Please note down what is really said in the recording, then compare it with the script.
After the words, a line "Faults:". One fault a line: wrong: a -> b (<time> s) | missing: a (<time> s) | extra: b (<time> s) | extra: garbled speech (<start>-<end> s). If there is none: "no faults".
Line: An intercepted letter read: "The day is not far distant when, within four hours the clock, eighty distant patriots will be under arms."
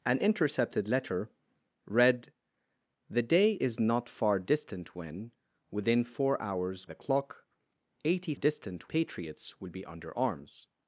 An intercepted letter read: "The day is not far distant when, within four hours the clock, eighty distant patriots will be under arms."
Faults:
no faults